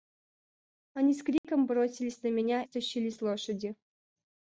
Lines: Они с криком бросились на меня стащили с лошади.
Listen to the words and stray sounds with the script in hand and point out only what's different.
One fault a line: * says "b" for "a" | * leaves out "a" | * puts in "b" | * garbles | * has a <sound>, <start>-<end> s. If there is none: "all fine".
* has a dropout, 1.4-1.4 s